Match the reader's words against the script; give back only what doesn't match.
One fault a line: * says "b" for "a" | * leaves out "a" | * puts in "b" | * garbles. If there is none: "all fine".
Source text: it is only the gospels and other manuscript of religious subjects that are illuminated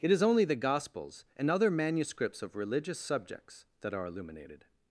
* says "manuscripts" for "manuscript"